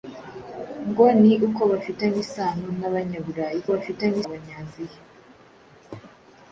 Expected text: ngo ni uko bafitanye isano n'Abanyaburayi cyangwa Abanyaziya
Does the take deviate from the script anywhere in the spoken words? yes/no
yes